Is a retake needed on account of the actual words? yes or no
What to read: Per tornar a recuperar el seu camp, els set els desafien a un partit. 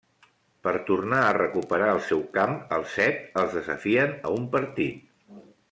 no